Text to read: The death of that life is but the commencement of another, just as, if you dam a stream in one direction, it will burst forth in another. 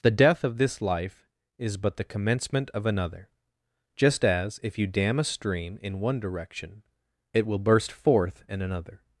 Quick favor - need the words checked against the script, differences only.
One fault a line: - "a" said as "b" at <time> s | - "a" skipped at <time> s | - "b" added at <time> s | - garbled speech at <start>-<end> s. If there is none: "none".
- "that" said as "this" at 0.6 s